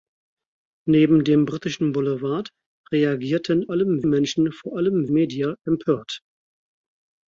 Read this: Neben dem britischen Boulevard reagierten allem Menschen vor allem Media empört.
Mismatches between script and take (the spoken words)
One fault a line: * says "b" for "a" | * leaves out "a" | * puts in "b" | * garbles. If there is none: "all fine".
all fine